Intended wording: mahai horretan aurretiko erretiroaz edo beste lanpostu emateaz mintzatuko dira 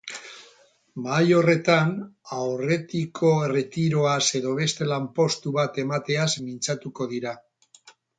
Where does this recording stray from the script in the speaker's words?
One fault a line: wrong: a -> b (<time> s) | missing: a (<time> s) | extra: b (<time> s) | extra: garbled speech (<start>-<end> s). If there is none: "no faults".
extra: bat (5.6 s)